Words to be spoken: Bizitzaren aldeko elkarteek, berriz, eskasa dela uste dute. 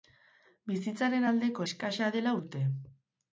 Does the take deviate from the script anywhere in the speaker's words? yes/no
yes